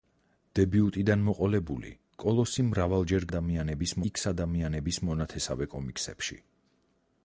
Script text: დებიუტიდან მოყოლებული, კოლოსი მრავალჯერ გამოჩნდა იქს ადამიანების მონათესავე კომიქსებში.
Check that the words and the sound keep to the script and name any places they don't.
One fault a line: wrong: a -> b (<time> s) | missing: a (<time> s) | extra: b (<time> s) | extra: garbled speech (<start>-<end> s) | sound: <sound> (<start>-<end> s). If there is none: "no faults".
wrong: გამოჩნდა -> ადამიანების (3.3 s)